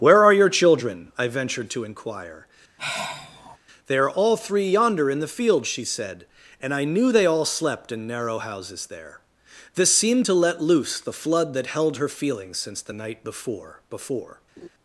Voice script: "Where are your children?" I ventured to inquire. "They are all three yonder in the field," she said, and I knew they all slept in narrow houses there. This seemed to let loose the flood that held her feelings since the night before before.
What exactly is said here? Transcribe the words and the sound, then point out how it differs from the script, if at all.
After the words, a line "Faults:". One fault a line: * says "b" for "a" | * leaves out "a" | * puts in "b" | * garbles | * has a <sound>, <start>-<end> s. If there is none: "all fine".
"Where are your children?" I ventured to inquire. "They are all three yonder in the field," she said, and I knew they all slept in narrow houses there. This seemed to let loose the flood that held her feelings since the night before before.
Faults:
* has a sigh, 2.8-3.6 s
* has a laugh, 14.6-14.7 s